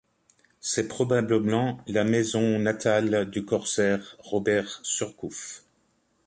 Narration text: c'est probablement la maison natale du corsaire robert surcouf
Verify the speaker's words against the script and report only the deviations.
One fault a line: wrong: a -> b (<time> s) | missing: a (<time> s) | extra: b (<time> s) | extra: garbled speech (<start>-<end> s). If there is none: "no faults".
no faults